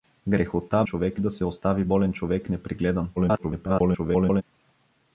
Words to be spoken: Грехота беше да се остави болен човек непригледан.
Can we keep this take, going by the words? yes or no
no